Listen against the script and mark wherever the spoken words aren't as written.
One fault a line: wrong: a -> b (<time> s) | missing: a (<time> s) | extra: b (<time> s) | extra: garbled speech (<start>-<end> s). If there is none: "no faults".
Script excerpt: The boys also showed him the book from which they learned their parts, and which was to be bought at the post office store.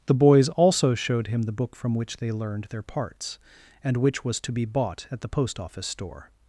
no faults